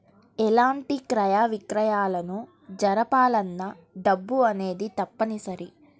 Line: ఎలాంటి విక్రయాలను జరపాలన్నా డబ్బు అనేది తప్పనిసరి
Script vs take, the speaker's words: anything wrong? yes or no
yes